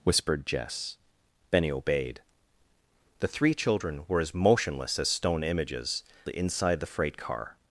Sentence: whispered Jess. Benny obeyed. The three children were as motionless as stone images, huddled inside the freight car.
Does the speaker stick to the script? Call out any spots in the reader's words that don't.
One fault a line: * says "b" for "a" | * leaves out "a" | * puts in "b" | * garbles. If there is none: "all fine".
* leaves out "huddled"